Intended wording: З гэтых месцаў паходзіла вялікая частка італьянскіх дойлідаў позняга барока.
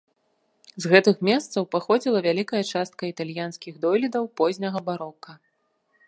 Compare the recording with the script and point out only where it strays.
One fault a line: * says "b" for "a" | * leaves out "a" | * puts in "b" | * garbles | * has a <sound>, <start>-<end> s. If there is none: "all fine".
all fine